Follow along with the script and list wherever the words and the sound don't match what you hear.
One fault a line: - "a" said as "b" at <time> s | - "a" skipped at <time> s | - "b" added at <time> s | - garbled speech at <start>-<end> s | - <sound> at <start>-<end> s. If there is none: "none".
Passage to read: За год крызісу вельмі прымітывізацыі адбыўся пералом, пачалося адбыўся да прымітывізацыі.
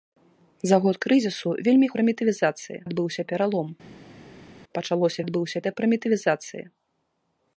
none